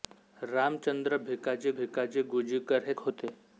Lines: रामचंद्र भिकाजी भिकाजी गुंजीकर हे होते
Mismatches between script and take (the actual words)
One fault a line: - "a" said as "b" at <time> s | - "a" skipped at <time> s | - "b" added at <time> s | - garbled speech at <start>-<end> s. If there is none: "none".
none